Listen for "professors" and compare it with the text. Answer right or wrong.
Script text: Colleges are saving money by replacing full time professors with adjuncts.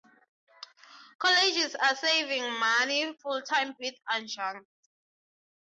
wrong